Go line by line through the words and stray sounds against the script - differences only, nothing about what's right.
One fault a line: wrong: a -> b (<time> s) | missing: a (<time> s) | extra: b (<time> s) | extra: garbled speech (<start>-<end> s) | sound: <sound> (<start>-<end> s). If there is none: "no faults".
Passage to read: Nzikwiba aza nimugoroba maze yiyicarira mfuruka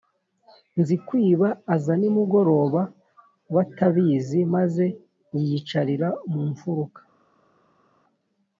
extra: batabizi (3.5 s)
extra: mu (6.3 s)